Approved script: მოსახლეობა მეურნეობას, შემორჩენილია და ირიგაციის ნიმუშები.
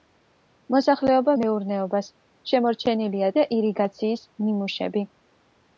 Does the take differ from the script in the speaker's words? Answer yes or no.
no